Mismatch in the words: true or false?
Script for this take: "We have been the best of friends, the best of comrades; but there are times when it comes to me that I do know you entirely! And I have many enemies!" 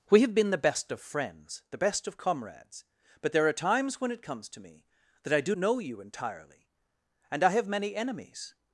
false